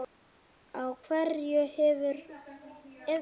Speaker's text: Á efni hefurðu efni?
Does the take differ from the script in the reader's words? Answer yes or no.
yes